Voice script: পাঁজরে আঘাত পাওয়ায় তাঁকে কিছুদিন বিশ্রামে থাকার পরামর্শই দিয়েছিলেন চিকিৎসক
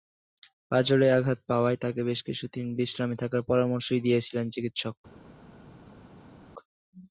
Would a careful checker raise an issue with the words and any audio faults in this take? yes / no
yes